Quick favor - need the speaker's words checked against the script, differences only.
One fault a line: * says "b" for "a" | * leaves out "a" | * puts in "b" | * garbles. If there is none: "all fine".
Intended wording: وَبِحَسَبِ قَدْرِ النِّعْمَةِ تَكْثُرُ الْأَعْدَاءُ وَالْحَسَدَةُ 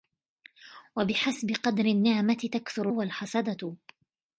* leaves out "الْأَعْدَاءُ"